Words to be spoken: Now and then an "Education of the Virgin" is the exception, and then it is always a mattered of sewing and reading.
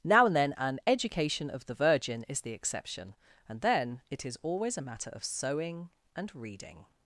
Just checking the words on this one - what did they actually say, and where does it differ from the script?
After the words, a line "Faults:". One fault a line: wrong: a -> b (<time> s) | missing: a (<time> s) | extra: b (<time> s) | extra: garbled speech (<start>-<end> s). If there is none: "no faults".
Now and then an "Education of the Virgin" is the exception, and then it is always a matter of sewing and reading.
Faults:
wrong: mattered -> matter (4.8 s)